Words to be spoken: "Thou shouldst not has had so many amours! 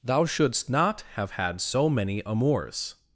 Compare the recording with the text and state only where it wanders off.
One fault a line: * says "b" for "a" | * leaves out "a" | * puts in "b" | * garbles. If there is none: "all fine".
* says "have" for "has"